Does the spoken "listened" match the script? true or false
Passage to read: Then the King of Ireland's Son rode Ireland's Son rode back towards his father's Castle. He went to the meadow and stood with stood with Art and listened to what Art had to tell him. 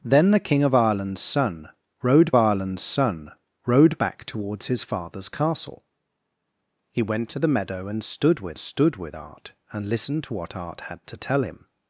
true